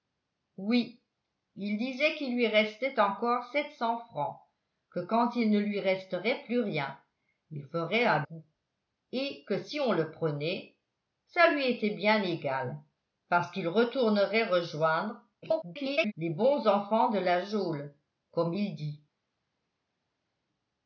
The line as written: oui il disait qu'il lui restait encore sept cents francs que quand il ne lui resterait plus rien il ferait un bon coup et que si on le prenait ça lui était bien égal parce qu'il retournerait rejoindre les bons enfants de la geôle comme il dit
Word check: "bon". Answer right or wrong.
wrong